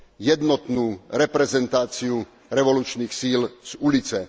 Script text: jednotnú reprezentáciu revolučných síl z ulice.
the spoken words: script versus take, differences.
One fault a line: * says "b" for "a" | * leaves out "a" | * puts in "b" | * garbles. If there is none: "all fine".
all fine